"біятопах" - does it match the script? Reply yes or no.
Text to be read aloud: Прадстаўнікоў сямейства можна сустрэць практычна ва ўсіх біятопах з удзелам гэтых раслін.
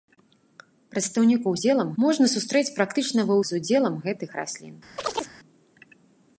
no